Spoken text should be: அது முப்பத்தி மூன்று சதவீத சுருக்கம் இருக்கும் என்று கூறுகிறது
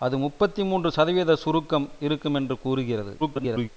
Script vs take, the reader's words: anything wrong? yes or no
yes